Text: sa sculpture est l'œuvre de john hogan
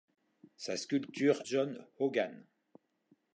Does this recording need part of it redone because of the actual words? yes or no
yes